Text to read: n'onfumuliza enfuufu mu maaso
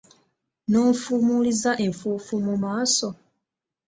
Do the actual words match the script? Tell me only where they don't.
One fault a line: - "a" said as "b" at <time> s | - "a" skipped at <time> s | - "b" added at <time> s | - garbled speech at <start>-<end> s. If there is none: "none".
none